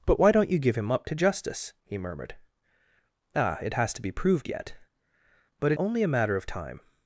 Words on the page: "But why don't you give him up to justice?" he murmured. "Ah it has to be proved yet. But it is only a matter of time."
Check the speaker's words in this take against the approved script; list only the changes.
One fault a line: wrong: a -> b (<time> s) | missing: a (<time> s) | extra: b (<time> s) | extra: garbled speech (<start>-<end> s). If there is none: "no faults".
missing: is (5.8 s)